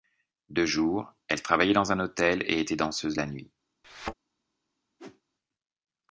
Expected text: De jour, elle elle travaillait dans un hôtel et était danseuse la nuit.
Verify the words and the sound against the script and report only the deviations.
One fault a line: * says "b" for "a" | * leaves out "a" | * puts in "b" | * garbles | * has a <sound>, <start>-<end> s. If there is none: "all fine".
* leaves out "elle"
* has a thud, 3.8-4.1 s
* has a whoosh, 5.0-5.2 s